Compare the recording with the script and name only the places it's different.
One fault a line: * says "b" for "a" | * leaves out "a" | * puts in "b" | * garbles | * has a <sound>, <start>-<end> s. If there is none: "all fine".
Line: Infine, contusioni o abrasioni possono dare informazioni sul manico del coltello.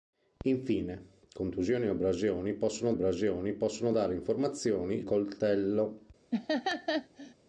* puts in "abrasioni possono"
* leaves out "sul manico del"
* has a laugh, 6.3-7.3 s